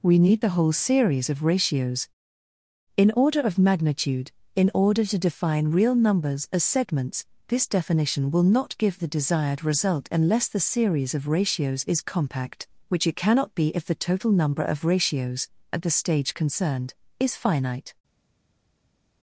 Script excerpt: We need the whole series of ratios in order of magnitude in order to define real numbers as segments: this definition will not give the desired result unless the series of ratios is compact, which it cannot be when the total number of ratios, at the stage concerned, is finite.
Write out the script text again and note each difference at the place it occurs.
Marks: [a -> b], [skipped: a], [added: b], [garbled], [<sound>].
We need the whole series of ratios in order of magnitude in order to define real numbers as segments: this definition will not give the desired result unless the series of ratios is compact, which it cannot be [when -> if] the total number of ratios, at the stage concerned, is finite.